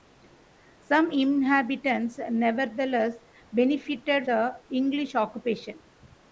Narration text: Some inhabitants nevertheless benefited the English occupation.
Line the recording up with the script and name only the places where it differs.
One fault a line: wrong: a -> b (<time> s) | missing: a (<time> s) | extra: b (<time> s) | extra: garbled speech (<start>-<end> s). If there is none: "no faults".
no faults